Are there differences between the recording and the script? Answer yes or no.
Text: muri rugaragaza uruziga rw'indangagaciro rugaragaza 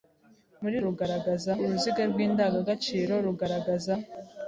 no